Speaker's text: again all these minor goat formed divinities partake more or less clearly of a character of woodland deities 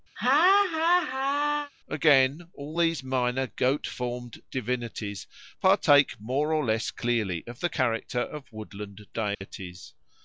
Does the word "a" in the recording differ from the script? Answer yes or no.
yes